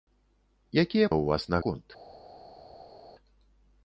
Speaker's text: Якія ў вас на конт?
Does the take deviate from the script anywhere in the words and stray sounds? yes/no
no